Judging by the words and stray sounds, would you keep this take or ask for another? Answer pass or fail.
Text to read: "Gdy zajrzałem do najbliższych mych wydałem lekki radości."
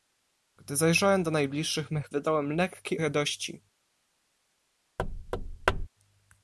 fail